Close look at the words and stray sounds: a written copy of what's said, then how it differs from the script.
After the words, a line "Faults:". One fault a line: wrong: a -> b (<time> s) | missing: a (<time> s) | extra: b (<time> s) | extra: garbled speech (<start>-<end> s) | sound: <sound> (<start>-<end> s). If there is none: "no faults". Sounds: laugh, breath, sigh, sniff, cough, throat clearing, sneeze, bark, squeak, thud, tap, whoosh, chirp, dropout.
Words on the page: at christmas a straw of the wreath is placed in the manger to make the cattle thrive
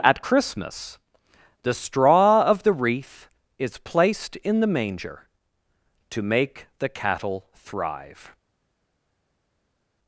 at christmas the straw of the wreath is placed in the manger to make the cattle thrive
Faults:
wrong: a -> the (1.6 s)